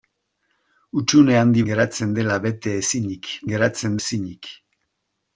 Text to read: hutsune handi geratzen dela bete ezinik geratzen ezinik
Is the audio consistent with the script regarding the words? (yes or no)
yes